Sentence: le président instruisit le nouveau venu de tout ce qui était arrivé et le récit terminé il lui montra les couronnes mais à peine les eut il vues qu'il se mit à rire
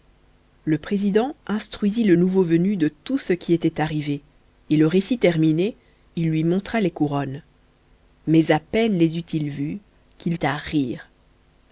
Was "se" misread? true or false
true